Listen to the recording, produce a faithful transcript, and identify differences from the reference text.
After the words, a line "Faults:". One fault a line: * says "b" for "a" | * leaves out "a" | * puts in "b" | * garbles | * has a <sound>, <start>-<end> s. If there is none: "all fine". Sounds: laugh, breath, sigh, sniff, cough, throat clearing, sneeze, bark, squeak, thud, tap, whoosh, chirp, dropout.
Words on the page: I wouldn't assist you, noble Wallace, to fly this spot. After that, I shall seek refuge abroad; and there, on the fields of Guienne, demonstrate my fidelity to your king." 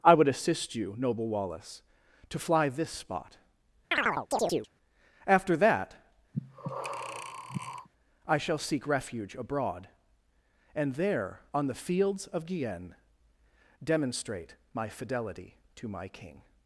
I would assist you, noble Wallace, to fly this spot. After that, I shall seek refuge abroad; and there, on the fields of Guienne, demonstrate my fidelity to my king."
Faults:
* says "would" for "wouldn't"
* has a chirp, 3.9-4.7 s
* has a breath, 6.3-7.9 s
* says "my" for "your"